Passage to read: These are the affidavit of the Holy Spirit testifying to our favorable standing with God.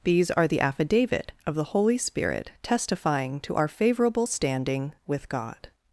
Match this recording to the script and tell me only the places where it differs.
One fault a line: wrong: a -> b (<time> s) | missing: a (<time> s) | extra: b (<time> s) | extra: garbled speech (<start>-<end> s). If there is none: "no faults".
no faults